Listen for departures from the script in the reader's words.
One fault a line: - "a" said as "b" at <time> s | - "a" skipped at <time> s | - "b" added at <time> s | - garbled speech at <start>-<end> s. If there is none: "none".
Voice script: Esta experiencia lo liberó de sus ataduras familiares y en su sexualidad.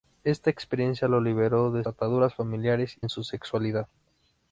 - "sus" skipped at 1.9 s
- "y" skipped at 3.0 s